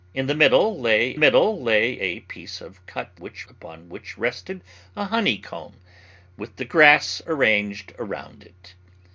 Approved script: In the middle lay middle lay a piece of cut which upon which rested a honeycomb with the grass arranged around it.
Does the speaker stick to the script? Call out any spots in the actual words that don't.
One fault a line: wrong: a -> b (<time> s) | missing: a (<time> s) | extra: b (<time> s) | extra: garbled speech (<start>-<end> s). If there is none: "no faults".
no faults